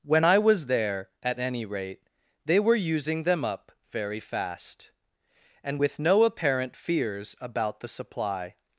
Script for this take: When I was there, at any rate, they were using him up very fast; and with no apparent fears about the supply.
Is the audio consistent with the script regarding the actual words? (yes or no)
no